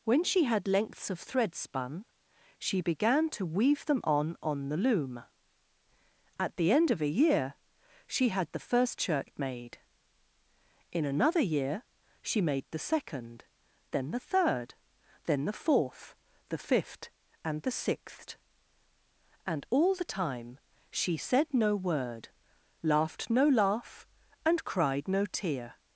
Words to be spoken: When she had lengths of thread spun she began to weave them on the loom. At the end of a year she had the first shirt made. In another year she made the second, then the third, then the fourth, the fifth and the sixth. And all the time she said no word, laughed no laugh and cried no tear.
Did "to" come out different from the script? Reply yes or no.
no